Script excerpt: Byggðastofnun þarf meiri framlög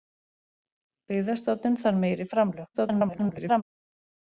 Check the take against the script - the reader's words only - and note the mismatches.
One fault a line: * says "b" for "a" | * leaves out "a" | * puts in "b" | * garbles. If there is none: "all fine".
* garbles